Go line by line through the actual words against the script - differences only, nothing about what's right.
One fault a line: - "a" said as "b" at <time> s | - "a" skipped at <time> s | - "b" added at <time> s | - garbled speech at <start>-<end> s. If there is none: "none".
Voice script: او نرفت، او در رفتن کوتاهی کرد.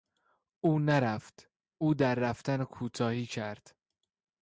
none